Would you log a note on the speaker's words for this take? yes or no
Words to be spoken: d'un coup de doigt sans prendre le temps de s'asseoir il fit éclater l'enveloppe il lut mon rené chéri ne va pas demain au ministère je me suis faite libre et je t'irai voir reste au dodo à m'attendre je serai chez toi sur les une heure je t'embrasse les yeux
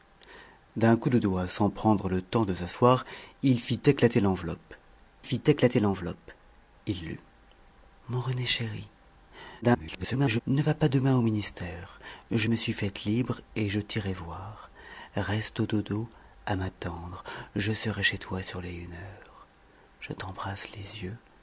yes